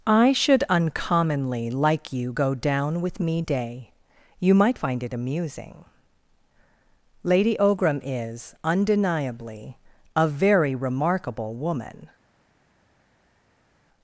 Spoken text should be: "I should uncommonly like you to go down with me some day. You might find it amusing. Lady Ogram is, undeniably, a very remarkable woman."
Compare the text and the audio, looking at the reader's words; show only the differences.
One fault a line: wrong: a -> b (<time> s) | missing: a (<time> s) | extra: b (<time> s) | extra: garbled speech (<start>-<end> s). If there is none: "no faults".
missing: to (2.3 s)
missing: some (3.4 s)